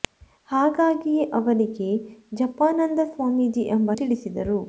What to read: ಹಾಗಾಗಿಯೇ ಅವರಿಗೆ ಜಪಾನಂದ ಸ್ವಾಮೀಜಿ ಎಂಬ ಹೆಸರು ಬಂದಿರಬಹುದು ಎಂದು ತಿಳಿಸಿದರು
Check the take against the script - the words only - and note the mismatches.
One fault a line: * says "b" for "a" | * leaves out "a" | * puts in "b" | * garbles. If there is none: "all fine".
* leaves out "ಹೆಸರು ಬಂದಿರಬಹುದು ಎಂದು"